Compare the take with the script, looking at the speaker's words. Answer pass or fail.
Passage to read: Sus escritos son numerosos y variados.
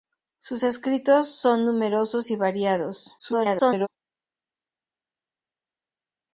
fail